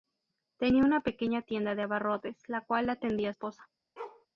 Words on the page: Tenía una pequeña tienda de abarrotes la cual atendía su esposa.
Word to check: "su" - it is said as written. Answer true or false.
false